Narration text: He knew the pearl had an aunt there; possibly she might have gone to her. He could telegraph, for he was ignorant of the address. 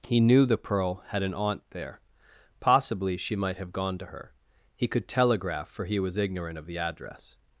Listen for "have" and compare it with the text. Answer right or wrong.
right